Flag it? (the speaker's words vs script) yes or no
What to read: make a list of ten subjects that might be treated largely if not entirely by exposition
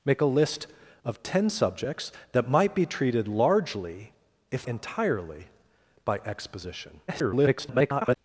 yes